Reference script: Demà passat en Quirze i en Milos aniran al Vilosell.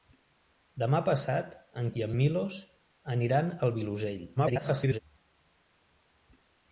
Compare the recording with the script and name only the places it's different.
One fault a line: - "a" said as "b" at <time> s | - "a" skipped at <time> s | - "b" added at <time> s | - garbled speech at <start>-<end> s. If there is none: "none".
- "Quirze" skipped at 1.9 s
- garbled speech at 4.4-5.0 s